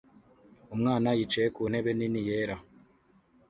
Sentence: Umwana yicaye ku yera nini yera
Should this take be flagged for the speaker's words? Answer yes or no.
yes